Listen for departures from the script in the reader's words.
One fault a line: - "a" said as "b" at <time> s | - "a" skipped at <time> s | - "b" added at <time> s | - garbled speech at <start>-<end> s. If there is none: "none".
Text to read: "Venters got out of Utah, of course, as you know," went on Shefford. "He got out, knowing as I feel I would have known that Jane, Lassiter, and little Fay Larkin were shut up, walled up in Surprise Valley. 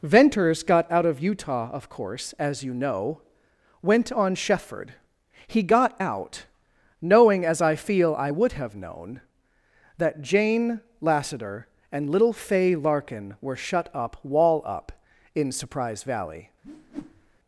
- "walled" said as "wall" at 14.2 s